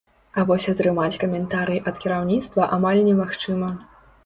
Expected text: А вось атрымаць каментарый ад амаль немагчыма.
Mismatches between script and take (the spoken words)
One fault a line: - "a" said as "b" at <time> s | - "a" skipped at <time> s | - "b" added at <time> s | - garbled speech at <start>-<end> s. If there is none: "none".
- "кіраўніцтва" added at 2.0 s